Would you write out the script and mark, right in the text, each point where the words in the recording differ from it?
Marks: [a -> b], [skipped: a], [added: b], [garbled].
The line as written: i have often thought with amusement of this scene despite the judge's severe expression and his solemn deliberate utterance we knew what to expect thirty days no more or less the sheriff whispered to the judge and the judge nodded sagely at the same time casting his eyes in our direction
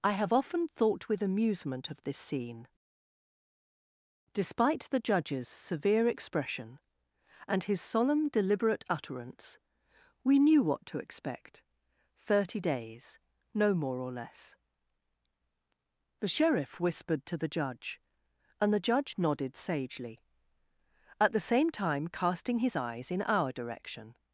i have often thought with amusement of this scene despite the judge's severe expression and his solemn deliberate utterance we knew what to expect thirty days no more or less the sheriff whispered to the judge and the judge nodded sagely at the same time casting his eyes in our direction